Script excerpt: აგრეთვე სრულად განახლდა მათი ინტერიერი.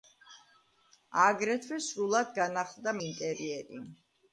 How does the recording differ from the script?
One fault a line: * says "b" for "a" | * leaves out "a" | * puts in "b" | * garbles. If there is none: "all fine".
* leaves out "მათი"